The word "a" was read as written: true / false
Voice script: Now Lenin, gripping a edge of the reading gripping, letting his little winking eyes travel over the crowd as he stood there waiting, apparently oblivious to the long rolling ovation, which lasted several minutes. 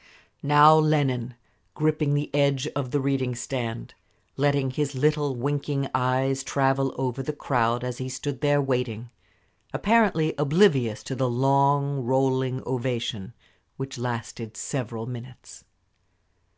false